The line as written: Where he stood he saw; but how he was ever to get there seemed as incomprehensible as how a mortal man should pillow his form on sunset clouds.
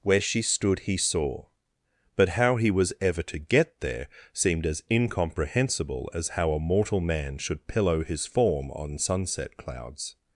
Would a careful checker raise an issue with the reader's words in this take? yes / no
yes